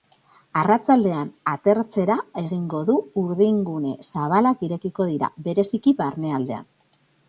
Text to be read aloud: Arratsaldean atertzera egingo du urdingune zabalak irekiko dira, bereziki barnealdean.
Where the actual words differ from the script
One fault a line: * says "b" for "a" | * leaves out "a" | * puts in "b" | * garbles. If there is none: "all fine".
all fine